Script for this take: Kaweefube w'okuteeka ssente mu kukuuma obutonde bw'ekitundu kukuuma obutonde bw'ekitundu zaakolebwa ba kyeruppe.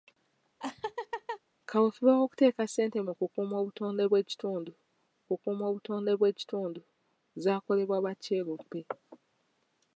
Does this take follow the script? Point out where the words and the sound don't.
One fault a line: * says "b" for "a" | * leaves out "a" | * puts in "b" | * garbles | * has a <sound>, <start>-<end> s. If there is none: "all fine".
* has a laugh, 0.6-1.4 s